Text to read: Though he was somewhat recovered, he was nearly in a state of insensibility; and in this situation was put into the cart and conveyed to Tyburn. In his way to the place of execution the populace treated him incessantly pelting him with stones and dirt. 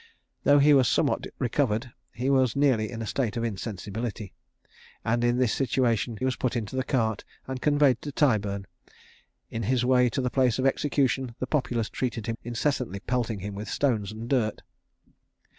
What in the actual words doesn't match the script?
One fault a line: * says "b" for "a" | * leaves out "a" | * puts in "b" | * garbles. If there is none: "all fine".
all fine